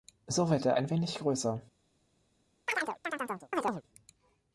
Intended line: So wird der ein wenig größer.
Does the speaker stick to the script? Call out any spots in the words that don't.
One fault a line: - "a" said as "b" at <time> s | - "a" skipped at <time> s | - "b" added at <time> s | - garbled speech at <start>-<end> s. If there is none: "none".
none